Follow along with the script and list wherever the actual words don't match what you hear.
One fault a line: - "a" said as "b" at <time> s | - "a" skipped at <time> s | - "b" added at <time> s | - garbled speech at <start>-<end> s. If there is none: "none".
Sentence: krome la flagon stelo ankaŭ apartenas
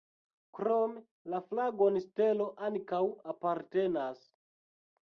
none